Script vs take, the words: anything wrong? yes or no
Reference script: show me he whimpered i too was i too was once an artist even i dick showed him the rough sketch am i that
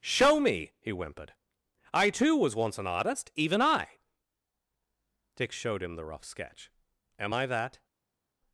yes